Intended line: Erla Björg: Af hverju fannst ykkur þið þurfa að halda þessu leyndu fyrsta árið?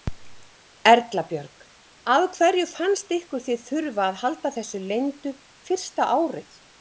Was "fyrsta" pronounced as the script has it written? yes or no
yes